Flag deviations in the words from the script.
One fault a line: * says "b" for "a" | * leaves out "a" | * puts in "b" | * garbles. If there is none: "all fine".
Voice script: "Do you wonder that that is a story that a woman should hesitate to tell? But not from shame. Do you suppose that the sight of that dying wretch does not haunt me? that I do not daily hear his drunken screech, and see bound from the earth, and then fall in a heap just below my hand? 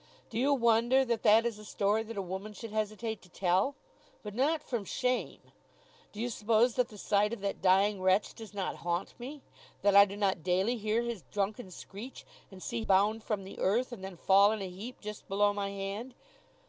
all fine